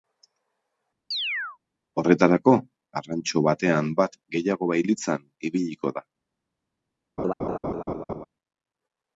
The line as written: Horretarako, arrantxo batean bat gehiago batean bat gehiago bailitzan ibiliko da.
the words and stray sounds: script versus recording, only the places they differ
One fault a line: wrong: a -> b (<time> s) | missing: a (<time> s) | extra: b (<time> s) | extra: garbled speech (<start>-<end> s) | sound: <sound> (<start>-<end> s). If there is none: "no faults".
sound: chirp (1.1-1.6 s)
missing: batean bat gehiago (4.7 s)
sound: laugh (7.2-8.2 s)